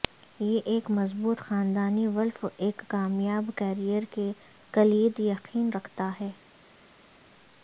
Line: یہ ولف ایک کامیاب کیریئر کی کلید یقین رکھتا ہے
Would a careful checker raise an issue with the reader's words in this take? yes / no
yes